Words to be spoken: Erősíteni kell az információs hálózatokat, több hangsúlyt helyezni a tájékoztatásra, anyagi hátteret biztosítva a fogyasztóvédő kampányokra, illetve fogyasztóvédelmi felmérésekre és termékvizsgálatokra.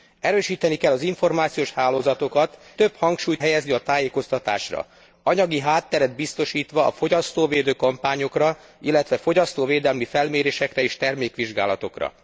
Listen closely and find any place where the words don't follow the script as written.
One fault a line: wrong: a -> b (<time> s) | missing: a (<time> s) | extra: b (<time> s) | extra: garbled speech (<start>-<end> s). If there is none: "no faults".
no faults